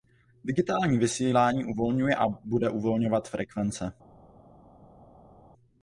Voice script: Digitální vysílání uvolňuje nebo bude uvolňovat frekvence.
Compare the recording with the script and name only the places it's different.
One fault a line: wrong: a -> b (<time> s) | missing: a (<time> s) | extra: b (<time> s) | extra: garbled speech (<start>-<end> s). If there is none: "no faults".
wrong: nebo -> a (2.1 s)